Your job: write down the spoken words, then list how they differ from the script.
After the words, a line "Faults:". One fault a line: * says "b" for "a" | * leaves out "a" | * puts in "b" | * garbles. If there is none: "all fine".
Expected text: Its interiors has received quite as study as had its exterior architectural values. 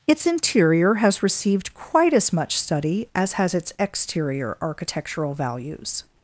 Its interior has received quite as much study as has its exterior architectural values.
Faults:
* says "interior" for "interiors"
* puts in "much"
* says "has" for "had"